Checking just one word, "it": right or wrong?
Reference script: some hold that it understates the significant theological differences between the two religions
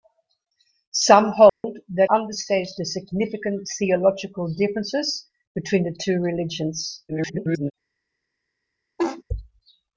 wrong